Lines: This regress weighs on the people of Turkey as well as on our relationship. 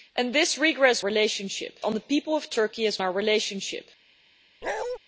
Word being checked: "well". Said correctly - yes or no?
no